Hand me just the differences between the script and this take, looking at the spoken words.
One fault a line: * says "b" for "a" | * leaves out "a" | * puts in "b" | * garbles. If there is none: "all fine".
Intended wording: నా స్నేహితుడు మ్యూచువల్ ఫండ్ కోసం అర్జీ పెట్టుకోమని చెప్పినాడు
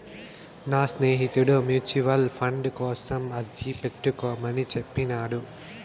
all fine